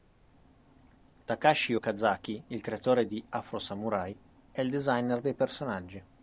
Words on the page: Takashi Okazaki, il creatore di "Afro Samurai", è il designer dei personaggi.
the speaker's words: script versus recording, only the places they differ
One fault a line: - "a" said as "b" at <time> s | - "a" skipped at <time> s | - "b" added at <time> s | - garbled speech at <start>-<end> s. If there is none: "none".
none